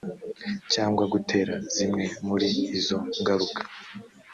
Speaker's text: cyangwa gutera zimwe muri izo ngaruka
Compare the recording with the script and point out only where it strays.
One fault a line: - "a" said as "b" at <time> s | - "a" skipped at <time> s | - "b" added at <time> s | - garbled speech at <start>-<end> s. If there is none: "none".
none